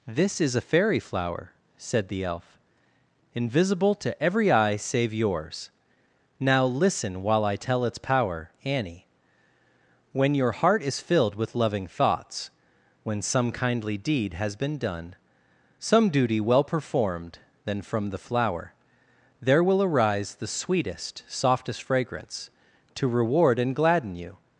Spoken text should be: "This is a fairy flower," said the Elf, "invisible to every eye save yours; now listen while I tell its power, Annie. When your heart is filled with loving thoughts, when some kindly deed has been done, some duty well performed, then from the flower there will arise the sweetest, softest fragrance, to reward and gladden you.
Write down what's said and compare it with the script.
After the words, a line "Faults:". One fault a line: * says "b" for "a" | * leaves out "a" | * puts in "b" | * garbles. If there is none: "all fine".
"This is a fairy flower," said the Elf, "invisible to every eye save yours; now listen while I tell its power, Annie. When your heart is filled with loving thoughts, when some kindly deed has been done, some duty well performed, then from the flower there will arise the sweetest, softest fragrance, to reward and gladden you.
Faults:
all fine